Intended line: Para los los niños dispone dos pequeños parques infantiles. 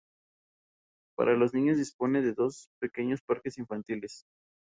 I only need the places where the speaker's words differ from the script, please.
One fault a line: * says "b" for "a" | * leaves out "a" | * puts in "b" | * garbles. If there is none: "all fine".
* leaves out "los"
* puts in "de"